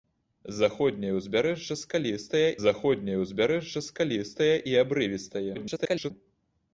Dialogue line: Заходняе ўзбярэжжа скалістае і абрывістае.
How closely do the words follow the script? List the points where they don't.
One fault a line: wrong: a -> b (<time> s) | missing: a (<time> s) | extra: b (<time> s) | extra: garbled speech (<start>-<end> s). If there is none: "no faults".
extra: заходняе ўзбярэжжа скалістае (2.6 s)
extra: garbled speech (5.5-6.1 s)